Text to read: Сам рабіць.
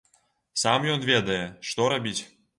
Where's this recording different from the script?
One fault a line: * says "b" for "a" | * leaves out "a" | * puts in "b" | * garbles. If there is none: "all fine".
* puts in "ён ведае што"